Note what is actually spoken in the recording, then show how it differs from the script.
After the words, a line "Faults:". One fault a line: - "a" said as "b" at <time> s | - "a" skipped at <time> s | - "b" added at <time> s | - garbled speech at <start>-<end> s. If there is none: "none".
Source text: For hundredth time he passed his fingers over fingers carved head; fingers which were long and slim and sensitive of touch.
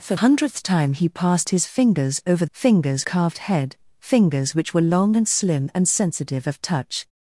For hundredth time he passed his fingers over fingers carved head; fingers which were long and slim and sensitive of touch.
Faults:
none